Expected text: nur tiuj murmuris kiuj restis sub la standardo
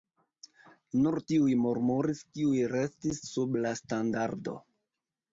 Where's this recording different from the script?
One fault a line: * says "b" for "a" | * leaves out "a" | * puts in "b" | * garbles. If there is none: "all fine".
all fine